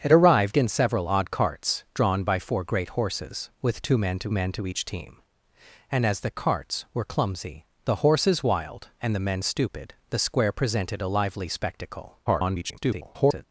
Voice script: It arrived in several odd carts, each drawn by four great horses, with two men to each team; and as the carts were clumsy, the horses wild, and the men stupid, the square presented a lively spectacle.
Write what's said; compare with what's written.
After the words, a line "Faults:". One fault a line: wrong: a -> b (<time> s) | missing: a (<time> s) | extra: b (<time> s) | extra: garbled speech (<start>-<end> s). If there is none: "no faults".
It arrived in several odd carts, drawn by four great horses, with two men to men to each team; and as the carts were clumsy, the horses wild, and the men stupid, the square presented a lively spectacle. [garbled]
Faults:
missing: each (1.8 s)
extra: men to (4.3 s)
extra: garbled speech (12.3-13.4 s)